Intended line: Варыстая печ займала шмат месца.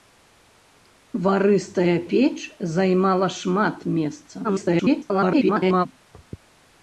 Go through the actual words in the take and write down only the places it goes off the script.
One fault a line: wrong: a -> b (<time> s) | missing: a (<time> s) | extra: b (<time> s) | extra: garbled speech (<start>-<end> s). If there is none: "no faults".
extra: garbled speech (4.4-5.9 s)